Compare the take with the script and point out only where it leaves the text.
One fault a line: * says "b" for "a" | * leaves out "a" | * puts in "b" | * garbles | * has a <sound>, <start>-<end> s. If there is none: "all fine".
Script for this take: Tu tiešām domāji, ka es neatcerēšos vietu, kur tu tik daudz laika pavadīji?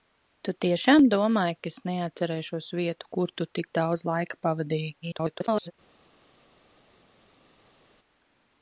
* garbles